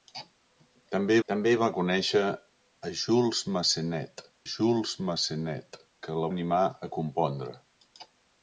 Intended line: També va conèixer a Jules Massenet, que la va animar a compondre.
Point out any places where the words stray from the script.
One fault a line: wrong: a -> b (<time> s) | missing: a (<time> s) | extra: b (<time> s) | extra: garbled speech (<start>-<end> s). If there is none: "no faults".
extra: també (1.3 s)
extra: Jules Massenet (4.5 s)
missing: va (6.3 s)